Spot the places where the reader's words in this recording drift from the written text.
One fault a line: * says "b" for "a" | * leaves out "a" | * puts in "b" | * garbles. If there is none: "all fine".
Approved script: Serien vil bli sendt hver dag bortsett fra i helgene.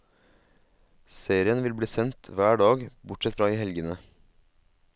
all fine